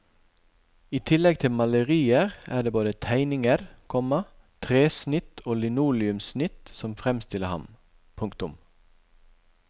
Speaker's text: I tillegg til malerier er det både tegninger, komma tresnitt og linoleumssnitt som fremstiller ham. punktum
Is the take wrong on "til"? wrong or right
right